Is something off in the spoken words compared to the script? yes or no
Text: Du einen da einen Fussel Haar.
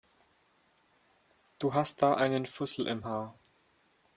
yes